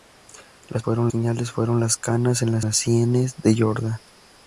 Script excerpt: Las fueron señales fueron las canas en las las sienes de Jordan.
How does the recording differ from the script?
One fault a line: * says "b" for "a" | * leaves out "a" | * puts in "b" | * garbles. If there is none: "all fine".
all fine